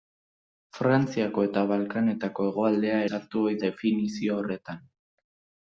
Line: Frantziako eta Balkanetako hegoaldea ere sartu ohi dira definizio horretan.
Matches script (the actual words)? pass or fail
fail